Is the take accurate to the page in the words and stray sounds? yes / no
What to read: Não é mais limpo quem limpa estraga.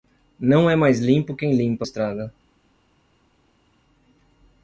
yes